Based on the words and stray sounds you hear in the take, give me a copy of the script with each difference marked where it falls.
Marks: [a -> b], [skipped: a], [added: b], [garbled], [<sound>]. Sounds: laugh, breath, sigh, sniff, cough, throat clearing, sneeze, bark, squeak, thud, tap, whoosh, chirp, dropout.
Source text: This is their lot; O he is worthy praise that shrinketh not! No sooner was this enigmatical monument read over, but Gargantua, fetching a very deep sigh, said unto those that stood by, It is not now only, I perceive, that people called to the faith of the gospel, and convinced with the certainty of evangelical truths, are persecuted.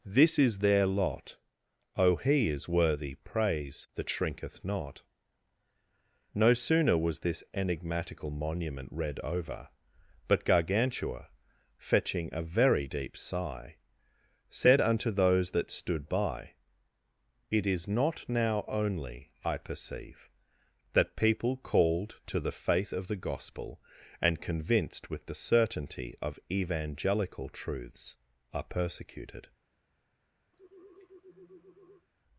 This is their lot; O he is worthy praise that shrinketh not! No sooner was this enigmatical monument read over, but Gargantua, fetching a very deep sigh, said unto those that stood by, It is not now only, I perceive, that people called to the faith of the gospel, and convinced with the certainty of evangelical truths, are persecuted. [sigh]